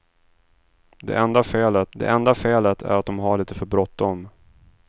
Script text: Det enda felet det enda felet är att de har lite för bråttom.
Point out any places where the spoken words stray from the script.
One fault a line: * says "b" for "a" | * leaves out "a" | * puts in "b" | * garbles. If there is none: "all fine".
all fine